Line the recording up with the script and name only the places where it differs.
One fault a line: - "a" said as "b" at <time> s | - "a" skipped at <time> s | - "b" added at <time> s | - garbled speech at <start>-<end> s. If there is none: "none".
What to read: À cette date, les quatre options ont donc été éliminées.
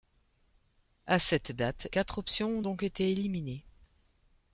- "les" skipped at 1.9 s